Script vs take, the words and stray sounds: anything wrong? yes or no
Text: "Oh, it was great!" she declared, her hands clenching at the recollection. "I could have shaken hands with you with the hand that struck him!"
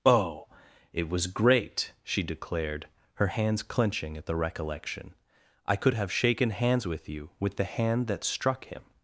no